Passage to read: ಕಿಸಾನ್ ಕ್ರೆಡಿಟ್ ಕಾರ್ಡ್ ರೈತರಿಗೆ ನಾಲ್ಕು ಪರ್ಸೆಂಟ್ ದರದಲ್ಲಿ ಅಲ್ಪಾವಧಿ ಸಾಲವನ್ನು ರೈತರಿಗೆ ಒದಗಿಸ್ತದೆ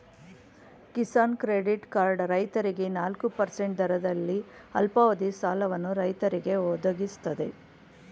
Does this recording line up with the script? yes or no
yes